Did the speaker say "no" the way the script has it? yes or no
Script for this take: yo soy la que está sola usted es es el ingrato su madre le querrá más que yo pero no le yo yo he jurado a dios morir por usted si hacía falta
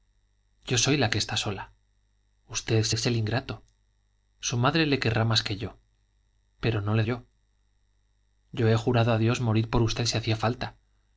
yes